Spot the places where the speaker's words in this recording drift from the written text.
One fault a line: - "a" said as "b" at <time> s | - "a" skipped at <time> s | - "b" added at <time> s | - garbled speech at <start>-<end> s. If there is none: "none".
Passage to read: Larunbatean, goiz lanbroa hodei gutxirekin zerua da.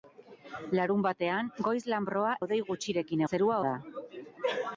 none